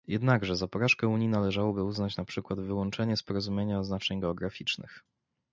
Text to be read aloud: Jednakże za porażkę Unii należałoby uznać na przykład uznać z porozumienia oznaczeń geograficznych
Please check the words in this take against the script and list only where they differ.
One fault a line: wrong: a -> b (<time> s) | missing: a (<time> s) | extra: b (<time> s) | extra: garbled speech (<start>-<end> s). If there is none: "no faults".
wrong: uznać -> wyłączenie (2.6 s)